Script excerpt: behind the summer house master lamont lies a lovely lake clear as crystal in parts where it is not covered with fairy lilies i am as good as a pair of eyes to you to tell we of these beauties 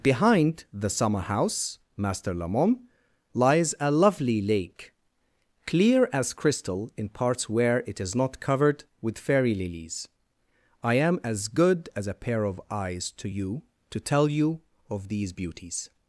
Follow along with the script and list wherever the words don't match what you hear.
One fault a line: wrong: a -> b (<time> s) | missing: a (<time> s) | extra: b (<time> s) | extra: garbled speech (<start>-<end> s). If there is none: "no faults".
wrong: we -> you (14.3 s)